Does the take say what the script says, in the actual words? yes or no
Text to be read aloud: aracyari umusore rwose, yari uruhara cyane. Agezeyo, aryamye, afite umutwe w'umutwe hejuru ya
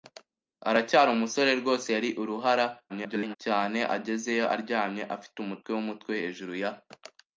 no